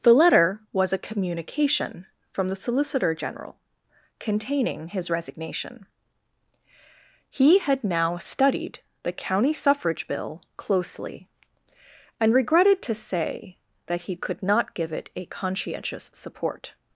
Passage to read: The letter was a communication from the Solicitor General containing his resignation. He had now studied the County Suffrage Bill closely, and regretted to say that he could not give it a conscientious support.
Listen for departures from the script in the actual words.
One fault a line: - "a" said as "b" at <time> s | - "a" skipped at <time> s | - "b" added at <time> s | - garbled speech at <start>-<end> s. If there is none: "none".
none